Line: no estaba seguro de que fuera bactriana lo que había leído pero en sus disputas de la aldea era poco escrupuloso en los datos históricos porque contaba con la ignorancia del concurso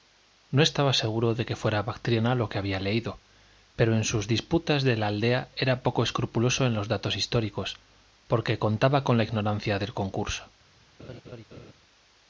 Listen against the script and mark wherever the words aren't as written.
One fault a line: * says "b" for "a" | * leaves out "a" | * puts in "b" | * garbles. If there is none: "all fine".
all fine